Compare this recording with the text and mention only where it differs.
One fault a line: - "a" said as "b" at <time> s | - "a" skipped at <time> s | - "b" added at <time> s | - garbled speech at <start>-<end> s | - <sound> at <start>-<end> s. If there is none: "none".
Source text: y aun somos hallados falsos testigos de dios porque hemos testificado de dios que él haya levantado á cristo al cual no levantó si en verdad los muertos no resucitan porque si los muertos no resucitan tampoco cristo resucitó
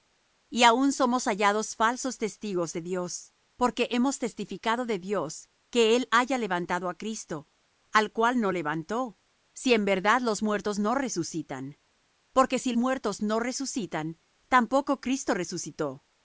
- "los" skipped at 12.7 s